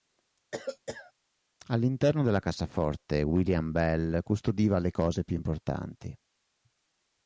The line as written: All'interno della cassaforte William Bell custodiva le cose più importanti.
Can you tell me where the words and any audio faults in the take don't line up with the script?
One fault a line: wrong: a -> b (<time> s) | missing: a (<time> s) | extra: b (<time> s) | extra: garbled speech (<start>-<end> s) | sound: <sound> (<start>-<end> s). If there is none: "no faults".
sound: cough (0.5-1.1 s)